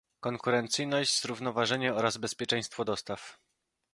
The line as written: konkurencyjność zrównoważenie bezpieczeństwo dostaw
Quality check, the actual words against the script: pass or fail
fail